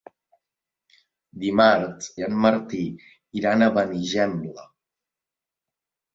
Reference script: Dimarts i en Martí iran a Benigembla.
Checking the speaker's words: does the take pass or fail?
pass